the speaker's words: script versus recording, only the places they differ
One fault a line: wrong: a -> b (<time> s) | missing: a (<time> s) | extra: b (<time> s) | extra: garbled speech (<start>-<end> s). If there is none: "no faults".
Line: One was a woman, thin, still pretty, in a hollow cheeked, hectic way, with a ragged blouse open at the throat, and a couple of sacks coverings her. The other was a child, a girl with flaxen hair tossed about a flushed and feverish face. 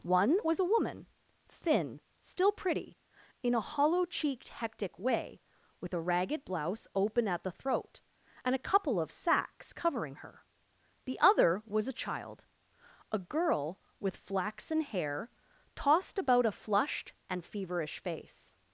wrong: coverings -> covering (9.7 s)